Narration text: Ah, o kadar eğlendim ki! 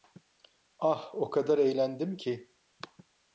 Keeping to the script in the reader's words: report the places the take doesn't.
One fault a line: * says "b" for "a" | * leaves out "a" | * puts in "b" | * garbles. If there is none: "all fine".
all fine